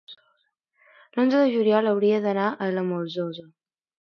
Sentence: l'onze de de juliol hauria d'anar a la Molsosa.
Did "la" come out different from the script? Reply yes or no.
no